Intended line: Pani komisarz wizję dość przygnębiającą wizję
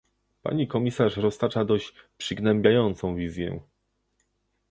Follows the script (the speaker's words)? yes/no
no